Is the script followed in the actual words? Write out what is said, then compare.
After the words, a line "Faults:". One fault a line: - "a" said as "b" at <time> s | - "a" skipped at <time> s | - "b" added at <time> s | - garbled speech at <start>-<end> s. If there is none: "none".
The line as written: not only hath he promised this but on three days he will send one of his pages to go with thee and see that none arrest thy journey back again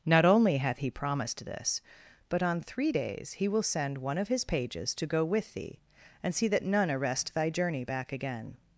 not only hath he promised this but on three days he will send one of his pages to go with thee and see that none arrest thy journey back again
Faults:
none